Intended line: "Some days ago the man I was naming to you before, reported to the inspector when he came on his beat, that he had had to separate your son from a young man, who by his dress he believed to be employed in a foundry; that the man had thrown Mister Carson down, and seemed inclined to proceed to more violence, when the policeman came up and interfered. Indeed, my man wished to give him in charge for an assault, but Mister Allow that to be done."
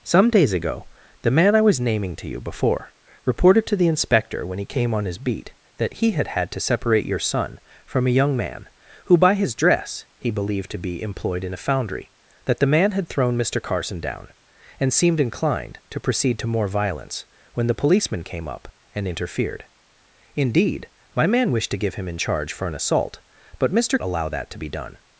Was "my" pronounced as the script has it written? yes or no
yes